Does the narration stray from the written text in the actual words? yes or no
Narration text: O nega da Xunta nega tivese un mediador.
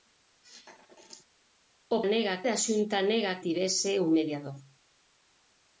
no